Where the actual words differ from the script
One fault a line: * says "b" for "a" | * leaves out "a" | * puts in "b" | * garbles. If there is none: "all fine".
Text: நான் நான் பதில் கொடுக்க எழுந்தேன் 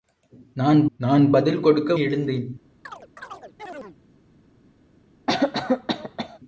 all fine